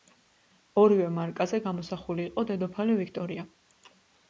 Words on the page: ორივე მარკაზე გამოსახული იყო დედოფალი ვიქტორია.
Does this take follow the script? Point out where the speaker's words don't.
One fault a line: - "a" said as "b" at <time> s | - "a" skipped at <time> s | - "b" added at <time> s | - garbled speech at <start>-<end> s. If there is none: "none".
none